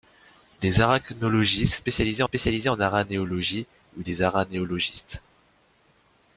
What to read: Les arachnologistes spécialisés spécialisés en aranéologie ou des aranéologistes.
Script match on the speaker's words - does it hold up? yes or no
yes